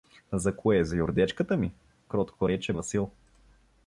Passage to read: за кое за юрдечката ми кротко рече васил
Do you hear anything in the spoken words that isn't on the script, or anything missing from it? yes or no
no